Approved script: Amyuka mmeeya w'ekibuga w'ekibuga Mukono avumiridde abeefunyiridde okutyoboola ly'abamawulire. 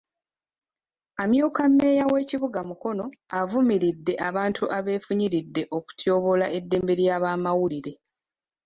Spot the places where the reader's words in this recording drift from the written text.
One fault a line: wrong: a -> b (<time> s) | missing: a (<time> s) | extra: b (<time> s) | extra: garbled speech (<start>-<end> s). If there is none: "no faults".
missing: w'ekibuga (2.6 s)
extra: abantu (4.3 s)
extra: eddembe (6.6 s)